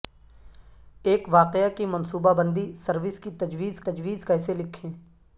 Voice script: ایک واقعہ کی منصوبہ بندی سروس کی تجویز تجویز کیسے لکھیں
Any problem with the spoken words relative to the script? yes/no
no